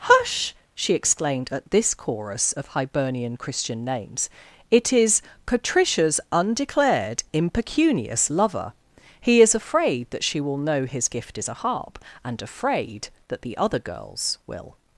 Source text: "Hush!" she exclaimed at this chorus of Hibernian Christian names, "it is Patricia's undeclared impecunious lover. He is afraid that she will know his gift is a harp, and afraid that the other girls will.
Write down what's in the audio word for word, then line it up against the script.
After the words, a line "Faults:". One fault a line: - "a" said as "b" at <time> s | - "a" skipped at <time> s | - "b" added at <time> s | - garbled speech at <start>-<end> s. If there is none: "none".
"Hush!" she exclaimed at this chorus of Hibernian Christian names, "it is Patricia's undeclared impecunious lover. He is afraid that she will know his gift is a harp, and afraid that the other girls will.
Faults:
none